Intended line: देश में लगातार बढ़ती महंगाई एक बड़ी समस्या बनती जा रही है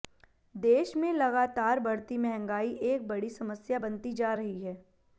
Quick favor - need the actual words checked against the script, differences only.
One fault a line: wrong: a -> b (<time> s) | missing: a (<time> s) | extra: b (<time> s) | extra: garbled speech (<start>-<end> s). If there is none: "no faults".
no faults